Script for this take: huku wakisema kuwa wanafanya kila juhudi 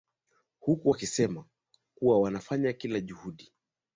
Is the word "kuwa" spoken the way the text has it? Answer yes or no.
yes